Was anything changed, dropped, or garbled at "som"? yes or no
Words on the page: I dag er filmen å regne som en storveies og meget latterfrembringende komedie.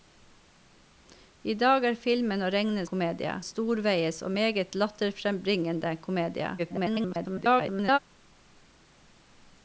yes